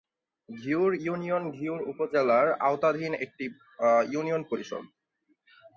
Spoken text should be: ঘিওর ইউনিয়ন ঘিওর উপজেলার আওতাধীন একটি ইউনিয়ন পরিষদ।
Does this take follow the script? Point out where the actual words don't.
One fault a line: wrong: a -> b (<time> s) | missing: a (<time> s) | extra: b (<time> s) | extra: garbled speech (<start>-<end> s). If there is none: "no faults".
no faults